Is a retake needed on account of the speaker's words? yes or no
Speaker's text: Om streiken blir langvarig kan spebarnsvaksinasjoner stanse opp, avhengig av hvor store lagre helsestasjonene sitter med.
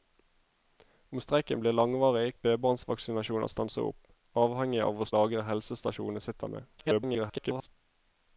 yes